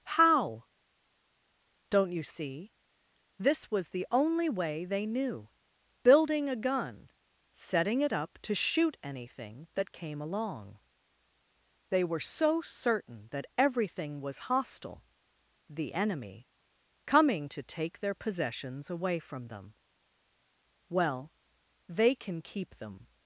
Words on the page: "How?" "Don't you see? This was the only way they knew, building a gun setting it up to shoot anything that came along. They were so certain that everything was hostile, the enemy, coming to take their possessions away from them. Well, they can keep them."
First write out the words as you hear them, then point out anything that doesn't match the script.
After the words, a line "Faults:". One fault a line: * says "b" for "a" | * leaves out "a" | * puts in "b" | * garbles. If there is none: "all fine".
"How?" "Don't you see? This was the only way they knew, building a gun setting it up to shoot anything that came along. They were so certain that everything was hostile, the enemy, coming to take their possessions away from them. Well, they can keep them."
Faults:
all fine